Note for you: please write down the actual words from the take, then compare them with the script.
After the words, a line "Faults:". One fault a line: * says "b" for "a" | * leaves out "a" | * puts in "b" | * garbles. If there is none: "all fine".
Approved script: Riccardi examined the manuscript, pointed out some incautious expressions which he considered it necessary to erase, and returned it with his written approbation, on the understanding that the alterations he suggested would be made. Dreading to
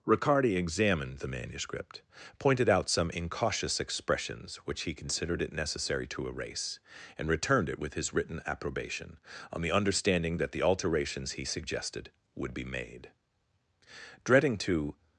Riccardi examined the manuscript, pointed out some incautious expressions which he considered it necessary to erase, and returned it with his written approbation, on the understanding that the alterations he suggested would be made. Dreading to
Faults:
all fine